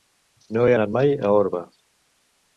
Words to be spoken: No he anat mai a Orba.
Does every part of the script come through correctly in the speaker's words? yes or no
yes